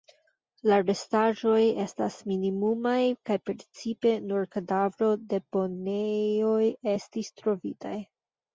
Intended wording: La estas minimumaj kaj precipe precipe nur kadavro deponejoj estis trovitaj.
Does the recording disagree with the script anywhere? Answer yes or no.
yes